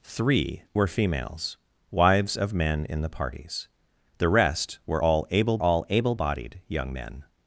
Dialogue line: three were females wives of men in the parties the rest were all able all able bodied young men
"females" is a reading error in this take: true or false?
false